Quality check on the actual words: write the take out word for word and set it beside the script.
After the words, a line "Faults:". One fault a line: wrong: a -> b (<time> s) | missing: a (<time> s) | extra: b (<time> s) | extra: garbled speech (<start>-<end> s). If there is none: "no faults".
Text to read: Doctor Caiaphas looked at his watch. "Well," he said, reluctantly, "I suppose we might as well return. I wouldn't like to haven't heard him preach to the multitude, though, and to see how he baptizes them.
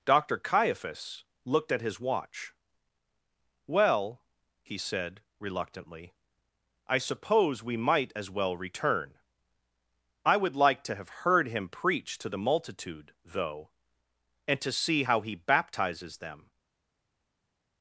Doctor Caiaphas looked at his watch. "Well," he said, reluctantly, "I suppose we might as well return. I would like to have heard him preach to the multitude, though, and to see how he baptizes them.
Faults:
wrong: wouldn't -> would (10.4 s)
wrong: haven't -> have (10.9 s)